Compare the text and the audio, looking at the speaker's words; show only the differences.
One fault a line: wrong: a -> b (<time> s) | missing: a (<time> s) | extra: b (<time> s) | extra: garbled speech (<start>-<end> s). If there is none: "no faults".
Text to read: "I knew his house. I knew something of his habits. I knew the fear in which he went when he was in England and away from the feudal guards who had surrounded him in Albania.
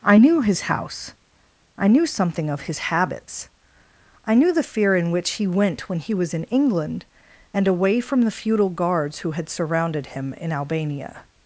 no faults